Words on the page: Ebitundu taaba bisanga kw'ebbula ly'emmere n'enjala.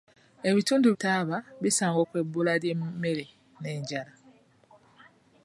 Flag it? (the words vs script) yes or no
no